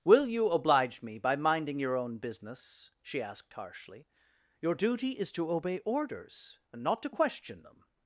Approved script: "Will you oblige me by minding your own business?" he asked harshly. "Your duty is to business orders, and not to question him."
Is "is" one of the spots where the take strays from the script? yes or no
no